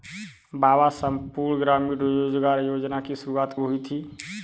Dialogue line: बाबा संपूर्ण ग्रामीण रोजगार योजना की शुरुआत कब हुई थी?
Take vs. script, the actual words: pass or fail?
fail